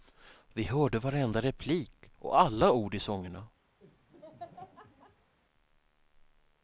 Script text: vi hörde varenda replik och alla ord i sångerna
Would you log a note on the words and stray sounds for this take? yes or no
yes